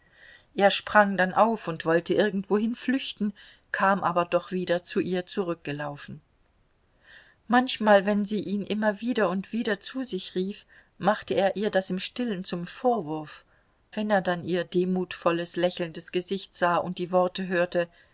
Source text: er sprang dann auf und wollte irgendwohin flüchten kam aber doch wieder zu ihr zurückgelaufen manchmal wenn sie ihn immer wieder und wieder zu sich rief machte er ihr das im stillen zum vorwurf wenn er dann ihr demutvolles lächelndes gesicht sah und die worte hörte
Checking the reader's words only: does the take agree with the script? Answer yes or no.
yes